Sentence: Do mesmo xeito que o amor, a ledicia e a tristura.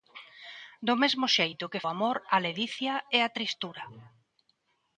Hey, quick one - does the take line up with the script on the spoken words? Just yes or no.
yes